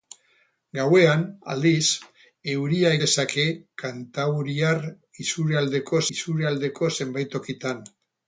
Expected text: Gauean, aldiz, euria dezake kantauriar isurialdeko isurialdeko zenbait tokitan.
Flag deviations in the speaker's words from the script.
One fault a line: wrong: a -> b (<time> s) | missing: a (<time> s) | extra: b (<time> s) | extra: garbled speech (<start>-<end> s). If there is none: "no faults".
no faults